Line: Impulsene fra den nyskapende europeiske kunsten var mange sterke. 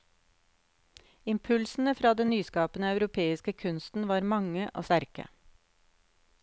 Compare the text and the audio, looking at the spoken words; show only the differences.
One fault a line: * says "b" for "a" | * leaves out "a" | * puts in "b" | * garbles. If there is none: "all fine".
* puts in "og"